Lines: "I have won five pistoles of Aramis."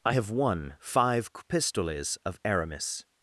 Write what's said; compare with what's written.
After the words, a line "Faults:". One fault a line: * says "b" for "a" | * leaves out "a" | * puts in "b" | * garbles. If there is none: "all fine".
"I have won five pistoles of Aramis."
Faults:
all fine